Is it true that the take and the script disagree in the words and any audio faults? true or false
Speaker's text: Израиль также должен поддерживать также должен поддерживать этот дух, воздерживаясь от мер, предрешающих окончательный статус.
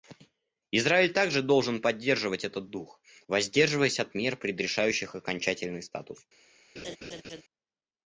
true